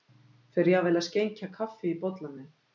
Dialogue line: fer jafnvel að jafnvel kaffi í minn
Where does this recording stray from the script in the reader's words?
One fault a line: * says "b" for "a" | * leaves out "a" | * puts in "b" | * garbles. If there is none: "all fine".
* says "skenkja" for "jafnvel"
* puts in "bollann"